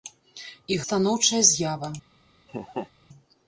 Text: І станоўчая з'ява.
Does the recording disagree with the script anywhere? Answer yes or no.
no